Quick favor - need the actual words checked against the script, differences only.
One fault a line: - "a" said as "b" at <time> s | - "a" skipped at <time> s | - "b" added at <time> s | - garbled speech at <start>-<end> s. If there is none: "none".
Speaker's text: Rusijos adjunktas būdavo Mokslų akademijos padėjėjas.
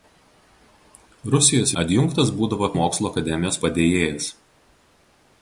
none